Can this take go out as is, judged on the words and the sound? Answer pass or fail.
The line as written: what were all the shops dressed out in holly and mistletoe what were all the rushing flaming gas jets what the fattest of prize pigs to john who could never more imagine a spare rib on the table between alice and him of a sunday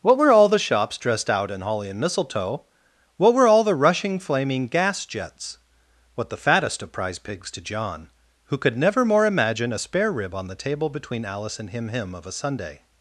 fail